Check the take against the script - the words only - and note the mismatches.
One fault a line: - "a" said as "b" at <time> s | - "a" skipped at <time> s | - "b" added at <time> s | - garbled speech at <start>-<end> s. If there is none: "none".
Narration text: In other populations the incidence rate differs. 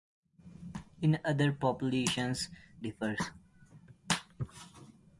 - "the incidence rate" skipped at 2.5 s